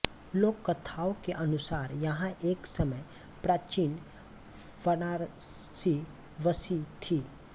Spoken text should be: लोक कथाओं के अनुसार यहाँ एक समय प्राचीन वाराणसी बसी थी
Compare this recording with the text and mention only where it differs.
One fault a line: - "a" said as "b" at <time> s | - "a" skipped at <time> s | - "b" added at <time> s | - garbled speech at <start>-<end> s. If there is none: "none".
none